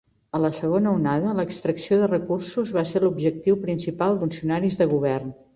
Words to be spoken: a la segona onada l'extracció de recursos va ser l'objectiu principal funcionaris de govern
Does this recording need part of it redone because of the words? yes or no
no